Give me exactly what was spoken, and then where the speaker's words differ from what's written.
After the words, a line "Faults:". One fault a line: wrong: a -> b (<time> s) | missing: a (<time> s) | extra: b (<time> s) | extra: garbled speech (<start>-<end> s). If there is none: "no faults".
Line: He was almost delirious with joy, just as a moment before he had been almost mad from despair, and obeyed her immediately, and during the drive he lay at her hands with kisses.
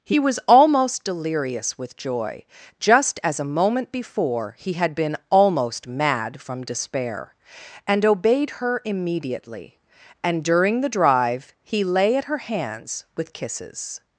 He was almost delirious with joy, just as a moment before he had been almost mad from despair, and obeyed her immediately, and during the drive he lay at her hands with kisses.
Faults:
no faults